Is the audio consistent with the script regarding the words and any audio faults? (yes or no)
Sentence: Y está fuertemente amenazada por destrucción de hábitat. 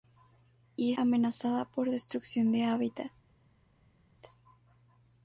no